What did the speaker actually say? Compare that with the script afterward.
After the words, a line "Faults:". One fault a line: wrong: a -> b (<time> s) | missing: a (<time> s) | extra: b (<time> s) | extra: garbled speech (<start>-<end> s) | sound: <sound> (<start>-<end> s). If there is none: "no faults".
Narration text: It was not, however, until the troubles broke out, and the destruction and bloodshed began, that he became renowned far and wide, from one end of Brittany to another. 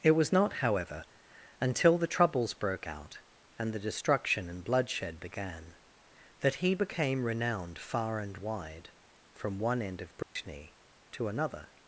It was not, however, until the troubles broke out, and the destruction and bloodshed began, that he became renowned far and wide, from one end of Brittany to another.
Faults:
sound: dropout (10.2-10.4 s)